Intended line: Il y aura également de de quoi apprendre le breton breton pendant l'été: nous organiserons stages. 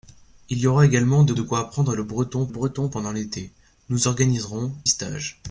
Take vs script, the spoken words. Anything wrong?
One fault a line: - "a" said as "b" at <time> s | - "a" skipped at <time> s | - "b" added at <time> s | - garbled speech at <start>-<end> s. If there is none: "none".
none